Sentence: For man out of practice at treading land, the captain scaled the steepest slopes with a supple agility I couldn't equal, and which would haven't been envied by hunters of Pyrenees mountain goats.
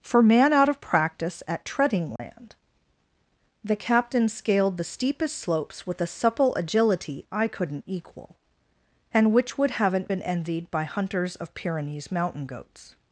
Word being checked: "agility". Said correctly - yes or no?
yes